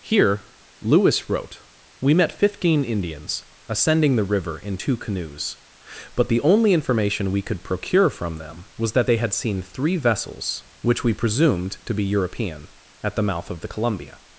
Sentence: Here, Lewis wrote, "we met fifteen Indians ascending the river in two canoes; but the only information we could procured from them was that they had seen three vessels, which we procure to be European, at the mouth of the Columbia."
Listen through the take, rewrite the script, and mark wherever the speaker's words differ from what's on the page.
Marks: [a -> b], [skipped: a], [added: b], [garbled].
Here, Lewis wrote, "we met fifteen Indians ascending the river in two canoes; but the only information we could [procured -> procure] from them was that they had seen three vessels, which we [procure -> presumed] to be European, at the mouth of the Columbia."